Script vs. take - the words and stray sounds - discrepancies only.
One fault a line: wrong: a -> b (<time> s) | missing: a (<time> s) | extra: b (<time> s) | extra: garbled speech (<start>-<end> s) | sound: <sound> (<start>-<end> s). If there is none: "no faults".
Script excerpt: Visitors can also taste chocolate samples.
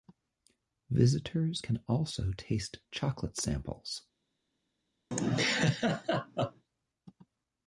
sound: laugh (5.1-6.6 s)